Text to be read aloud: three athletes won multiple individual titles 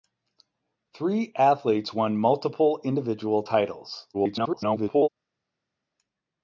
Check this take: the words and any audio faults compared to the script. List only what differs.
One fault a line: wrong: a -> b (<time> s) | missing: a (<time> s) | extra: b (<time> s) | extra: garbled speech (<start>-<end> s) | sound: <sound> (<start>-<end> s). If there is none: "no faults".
extra: garbled speech (4.1-5.1 s)